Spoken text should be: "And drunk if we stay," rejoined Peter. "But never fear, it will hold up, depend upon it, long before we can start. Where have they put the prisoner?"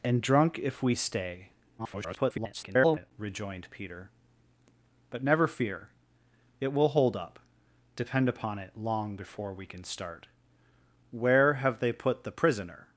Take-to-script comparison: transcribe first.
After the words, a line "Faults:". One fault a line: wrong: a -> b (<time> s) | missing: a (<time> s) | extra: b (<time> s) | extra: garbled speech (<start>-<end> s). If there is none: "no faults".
"And drunk if we stay," [garbled] rejoined Peter. "But never fear, it will hold up, depend upon it, long before we can start. Where have they put the prisoner?"
Faults:
extra: garbled speech (1.8-3.1 s)